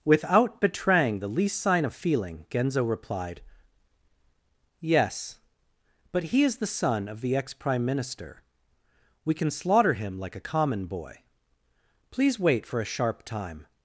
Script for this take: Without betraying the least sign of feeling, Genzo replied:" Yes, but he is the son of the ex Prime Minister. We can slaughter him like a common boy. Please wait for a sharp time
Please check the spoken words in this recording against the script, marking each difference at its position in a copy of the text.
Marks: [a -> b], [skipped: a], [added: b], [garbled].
Without betraying the least sign of feeling, Genzo replied:" Yes, but he is the son of the ex Prime Minister. We can slaughter him like a common boy. Please wait for a sharp time